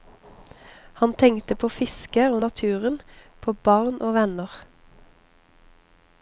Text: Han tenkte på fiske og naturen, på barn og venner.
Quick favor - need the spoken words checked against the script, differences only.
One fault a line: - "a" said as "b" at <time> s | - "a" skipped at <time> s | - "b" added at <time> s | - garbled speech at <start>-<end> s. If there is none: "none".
none